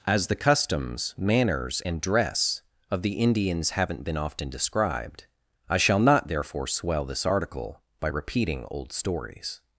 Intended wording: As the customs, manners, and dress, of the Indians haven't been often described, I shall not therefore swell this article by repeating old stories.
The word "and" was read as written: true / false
true